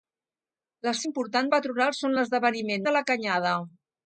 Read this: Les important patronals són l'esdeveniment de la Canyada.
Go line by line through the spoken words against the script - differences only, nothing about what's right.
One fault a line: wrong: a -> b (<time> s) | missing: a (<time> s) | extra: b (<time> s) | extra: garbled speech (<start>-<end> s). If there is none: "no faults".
no faults